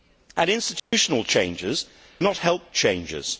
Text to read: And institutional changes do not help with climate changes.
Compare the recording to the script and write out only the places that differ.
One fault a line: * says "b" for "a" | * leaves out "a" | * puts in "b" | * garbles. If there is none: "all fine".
* leaves out "do"
* leaves out "with climate"